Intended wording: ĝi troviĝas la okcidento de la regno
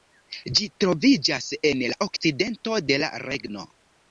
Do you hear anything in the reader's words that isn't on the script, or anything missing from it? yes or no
yes